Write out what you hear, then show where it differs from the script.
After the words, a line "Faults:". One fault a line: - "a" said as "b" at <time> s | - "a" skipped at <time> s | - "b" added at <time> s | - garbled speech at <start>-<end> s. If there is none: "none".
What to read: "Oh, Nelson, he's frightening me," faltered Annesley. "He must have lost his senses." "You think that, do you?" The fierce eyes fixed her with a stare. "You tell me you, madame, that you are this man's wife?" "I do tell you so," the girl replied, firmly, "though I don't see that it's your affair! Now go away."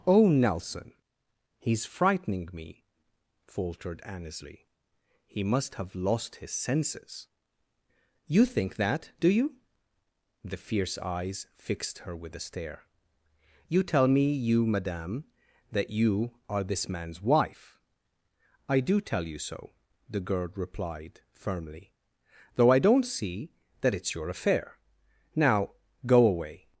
"Oh, Nelson, he's frightening me," faltered Annesley. "He must have lost his senses." "You think that, do you?" The fierce eyes fixed her with a stare. "You tell me you, madame, that you are this man's wife?" "I do tell you so," the girl replied, firmly, "though I don't see that it's your affair! Now go away."
Faults:
none